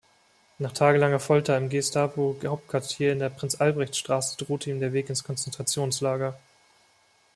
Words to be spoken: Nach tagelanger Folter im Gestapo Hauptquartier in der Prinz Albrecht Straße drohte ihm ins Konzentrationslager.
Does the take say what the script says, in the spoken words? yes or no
no